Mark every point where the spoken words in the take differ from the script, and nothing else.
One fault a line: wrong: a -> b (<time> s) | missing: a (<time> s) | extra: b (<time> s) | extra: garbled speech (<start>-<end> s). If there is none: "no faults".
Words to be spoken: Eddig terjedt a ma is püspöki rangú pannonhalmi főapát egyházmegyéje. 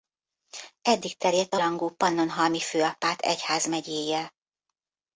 missing: ma is püspöki (1.6 s)